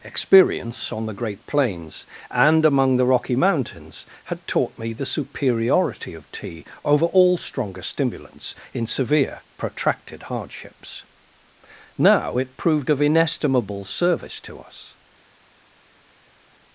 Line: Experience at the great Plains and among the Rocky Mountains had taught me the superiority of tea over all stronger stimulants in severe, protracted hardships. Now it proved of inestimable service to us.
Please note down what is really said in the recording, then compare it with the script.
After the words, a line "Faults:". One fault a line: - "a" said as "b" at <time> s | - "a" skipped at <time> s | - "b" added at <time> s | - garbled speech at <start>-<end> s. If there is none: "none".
Experience on the great Plains and among the Rocky Mountains had taught me the superiority of tea over all stronger stimulants in severe, protracted hardships. Now it proved of inestimable service to us.
Faults:
- "at" said as "on" at 0.9 s